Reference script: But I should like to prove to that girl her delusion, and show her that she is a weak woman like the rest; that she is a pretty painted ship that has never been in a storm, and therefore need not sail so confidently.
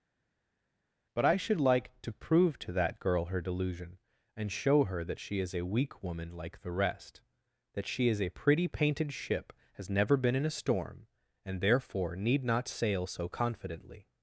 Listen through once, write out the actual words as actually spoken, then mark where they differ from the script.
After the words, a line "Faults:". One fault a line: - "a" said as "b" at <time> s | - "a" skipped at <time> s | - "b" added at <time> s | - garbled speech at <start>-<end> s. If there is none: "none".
But I should like to prove to that girl her delusion, and show her that she is a weak woman like the rest; that she is a pretty painted ship has never been in a storm, and therefore need not sail so confidently.
Faults:
- "that" skipped at 9.5 s